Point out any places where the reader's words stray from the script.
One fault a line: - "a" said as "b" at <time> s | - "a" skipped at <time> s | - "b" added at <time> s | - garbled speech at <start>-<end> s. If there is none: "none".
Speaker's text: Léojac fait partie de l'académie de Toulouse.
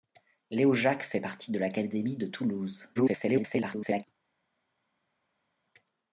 - garbled speech at 3.0-4.0 s